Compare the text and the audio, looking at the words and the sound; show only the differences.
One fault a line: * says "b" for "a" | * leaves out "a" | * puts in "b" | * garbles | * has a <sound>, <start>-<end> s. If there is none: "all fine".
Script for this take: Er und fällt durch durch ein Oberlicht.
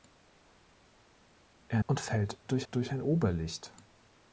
all fine